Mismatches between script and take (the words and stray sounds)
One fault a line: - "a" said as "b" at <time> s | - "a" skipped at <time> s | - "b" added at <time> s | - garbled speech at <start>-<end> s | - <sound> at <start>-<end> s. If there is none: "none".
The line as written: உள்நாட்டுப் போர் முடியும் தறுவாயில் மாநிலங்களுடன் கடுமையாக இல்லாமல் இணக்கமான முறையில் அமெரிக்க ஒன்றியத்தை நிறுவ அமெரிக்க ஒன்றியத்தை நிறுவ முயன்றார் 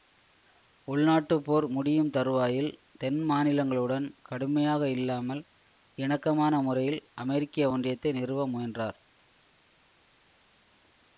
- "தென்" added at 3.0 s
- "அமெரிக்க ஒன்றியத்தை நிறுவ" skipped at 8.5 s